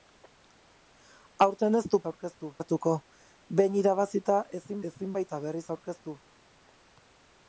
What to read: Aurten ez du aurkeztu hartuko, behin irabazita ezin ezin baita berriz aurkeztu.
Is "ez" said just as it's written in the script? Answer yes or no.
yes